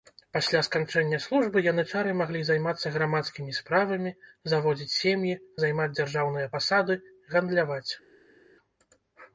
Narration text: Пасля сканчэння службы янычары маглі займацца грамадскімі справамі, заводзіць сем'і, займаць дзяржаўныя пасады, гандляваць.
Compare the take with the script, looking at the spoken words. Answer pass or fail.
pass